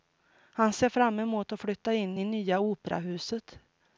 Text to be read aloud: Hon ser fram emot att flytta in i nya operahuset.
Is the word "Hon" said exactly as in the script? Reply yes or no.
no